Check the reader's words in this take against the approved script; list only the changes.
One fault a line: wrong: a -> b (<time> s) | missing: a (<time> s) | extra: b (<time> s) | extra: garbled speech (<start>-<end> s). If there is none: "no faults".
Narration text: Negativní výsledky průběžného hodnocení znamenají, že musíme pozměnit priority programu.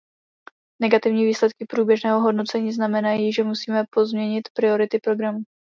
no faults